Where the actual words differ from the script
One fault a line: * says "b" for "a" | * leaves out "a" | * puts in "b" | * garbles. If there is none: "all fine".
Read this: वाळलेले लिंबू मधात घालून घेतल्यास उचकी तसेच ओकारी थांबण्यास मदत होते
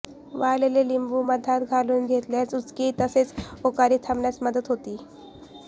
all fine